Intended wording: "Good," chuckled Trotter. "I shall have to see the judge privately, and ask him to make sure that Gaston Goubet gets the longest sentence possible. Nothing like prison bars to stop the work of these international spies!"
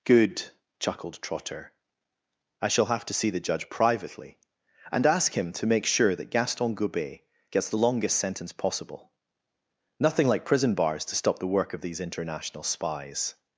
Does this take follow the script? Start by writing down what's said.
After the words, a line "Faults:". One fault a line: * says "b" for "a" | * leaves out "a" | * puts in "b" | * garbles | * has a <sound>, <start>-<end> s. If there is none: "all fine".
"Good," chuckled Trotter. "I shall have to see the judge privately, and ask him to make sure that Gaston Goubet gets the longest sentence possible. Nothing like prison bars to stop the work of these international spies!"
Faults:
all fine